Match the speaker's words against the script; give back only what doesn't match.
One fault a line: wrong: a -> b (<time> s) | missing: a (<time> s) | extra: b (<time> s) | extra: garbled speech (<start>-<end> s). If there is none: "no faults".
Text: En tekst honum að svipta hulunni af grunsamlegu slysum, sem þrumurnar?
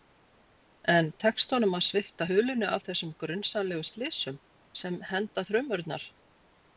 extra: þessum (2.9 s)
extra: henda (5.1 s)